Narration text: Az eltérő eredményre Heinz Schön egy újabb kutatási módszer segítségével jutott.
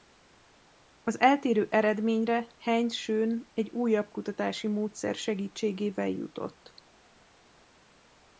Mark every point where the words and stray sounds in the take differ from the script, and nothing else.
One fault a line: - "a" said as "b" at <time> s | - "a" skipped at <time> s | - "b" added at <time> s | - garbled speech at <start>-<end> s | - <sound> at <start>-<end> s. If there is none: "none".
none